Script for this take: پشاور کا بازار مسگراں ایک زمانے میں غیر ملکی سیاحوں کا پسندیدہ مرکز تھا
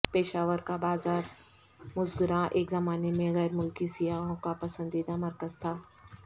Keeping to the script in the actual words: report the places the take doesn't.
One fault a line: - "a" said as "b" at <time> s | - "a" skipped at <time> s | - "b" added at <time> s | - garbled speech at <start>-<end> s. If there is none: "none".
none